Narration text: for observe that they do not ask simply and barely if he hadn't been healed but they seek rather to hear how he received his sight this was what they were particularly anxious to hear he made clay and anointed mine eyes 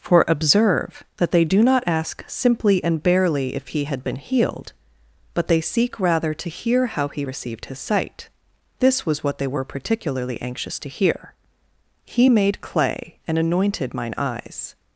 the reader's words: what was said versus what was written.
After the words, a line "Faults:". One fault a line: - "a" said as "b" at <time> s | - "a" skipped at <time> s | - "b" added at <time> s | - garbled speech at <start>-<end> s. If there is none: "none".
for observe that they do not ask simply and barely if he had been healed but they seek rather to hear how he received his sight this was what they were particularly anxious to hear he made clay and anointed mine eyes
Faults:
- "hadn't" said as "had" at 3.9 s